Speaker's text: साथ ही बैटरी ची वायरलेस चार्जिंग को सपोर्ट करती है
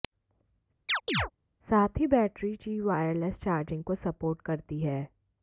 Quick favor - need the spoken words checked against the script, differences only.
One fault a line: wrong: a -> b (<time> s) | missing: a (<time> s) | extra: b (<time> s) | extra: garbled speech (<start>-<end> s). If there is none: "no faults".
no faults